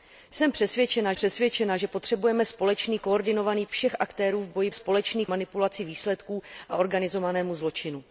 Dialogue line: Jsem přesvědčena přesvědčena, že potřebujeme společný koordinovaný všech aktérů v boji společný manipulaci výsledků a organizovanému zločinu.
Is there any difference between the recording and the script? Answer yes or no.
no